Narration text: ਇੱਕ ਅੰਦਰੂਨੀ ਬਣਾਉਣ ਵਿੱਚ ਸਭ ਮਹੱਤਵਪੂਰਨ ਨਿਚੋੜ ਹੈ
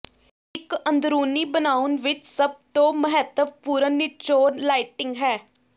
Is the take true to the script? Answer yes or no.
no